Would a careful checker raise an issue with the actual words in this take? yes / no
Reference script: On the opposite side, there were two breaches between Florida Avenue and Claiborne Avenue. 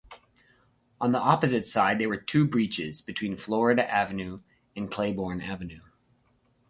no